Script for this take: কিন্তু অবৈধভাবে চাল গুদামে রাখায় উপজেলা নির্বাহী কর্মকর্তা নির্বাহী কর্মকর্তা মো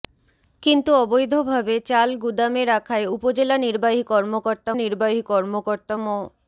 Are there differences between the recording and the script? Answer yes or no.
no